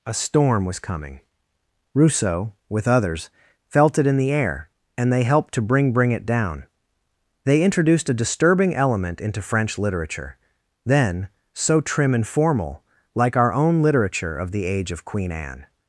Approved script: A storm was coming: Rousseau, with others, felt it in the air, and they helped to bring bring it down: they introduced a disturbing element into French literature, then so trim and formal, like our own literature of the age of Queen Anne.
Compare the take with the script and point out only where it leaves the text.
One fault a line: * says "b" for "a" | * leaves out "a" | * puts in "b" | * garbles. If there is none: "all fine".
all fine